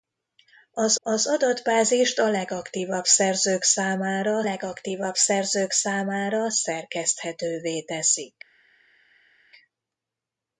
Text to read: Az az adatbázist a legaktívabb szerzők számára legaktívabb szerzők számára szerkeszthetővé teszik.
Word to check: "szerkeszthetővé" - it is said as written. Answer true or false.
true